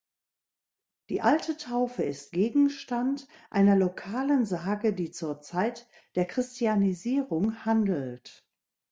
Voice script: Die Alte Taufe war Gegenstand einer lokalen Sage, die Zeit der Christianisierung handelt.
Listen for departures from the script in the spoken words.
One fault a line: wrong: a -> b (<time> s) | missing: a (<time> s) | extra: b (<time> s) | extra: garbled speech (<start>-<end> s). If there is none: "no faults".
wrong: war -> ist (2.0 s)
extra: zur (5.1 s)